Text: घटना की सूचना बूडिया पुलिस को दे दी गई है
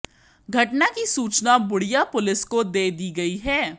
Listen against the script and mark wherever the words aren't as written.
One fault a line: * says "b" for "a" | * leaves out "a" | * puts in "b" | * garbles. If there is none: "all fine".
all fine